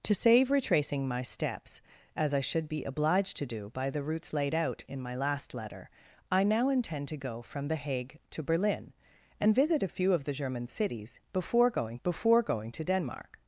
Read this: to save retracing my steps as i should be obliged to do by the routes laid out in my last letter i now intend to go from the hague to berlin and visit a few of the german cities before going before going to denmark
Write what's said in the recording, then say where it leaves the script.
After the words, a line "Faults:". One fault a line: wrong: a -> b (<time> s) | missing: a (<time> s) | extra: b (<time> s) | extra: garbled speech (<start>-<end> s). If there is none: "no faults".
to save retracing my steps as i should be obliged to do by the routes laid out in my last letter i now intend to go from the hague to berlin and visit a few of the german cities before going before going to denmark
Faults:
no faults